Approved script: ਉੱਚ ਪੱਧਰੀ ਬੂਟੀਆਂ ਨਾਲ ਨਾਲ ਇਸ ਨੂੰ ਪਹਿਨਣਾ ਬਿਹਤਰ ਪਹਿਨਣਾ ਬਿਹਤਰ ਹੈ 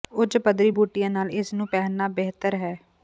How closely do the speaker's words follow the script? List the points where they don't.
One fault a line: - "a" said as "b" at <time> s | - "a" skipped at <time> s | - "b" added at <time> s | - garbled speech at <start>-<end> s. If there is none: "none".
- "ਨਾਲ" skipped at 1.3 s
- "ਪਹਿਨਣਾ ਬਿਹਤਰ" skipped at 2.5 s